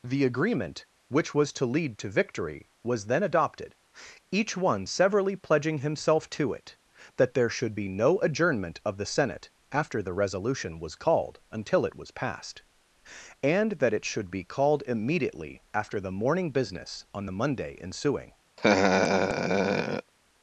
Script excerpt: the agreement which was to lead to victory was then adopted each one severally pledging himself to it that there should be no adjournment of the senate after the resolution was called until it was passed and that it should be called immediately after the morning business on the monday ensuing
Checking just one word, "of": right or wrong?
right